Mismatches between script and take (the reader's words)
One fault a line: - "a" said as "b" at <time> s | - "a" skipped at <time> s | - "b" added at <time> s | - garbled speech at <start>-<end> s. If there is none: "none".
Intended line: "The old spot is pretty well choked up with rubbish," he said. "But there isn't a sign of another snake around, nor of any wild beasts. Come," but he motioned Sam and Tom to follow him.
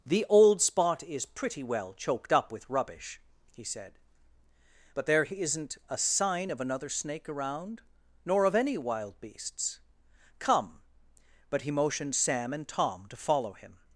none